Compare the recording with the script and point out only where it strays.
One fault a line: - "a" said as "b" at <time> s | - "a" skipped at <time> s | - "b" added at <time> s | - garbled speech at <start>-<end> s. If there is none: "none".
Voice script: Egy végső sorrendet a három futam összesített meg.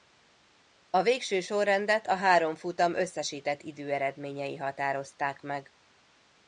- "Egy" said as "A" at 0.9 s
- "időeredményei határozták" added at 3.6 s